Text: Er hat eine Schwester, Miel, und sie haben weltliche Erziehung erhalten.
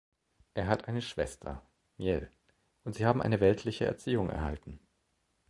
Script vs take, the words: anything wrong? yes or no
yes